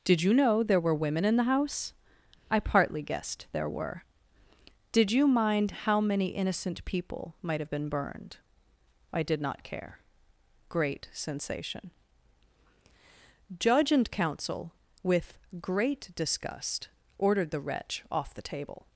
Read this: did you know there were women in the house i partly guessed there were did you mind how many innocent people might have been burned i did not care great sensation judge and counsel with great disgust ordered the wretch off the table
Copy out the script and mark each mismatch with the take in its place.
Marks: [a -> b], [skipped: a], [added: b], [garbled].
did you know there were women in the house i partly guessed there were did you mind how many innocent people might have been burned i did not care great sensation judge and counsel with great disgust ordered the wretch off the table